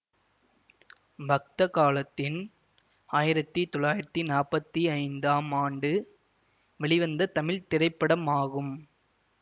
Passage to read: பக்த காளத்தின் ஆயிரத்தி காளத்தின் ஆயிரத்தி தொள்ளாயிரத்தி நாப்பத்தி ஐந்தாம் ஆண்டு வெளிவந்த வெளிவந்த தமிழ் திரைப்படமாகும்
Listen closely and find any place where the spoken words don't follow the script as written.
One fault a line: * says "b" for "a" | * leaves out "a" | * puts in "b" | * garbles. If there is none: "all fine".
* leaves out "காளத்தின் ஆயிரத்தி"
* leaves out "வெளிவந்த"